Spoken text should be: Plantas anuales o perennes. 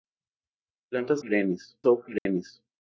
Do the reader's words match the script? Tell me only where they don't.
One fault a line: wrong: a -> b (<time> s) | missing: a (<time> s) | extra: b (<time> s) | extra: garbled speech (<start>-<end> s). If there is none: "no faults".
wrong: anuales -> perennes (1.2 s)